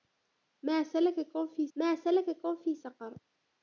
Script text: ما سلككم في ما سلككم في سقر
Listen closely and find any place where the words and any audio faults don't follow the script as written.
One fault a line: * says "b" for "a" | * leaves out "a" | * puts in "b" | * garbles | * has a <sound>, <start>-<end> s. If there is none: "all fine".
all fine